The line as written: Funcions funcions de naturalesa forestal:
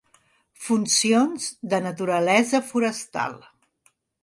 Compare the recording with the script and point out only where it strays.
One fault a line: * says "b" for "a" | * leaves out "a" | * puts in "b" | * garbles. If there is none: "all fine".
* leaves out "funcions"